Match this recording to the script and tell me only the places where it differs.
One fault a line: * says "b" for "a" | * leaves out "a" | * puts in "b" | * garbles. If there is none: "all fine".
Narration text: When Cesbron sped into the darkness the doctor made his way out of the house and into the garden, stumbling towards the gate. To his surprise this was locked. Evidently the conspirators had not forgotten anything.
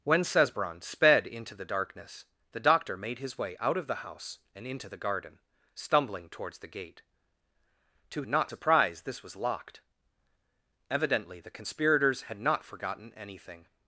* says "not" for "his"